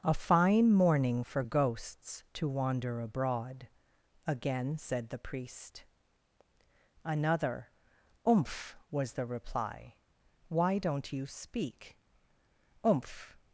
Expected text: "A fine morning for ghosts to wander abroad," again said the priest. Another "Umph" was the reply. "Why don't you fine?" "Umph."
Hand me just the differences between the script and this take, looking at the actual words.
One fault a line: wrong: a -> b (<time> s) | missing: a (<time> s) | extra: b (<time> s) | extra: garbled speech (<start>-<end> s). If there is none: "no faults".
wrong: fine -> speak (11.3 s)